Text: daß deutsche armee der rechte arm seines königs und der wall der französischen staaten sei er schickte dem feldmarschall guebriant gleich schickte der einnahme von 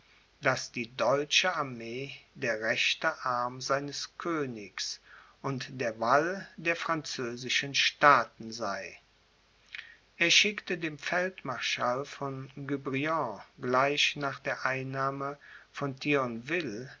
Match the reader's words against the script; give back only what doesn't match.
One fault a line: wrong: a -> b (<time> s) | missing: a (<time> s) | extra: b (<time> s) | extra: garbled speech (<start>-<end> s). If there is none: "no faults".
extra: die (0.7 s)
extra: von (12.0 s)
wrong: schickte -> nach (14.2 s)